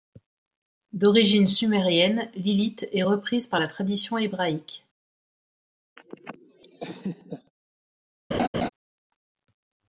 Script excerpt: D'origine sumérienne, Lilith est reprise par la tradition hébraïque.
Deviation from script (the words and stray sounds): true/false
true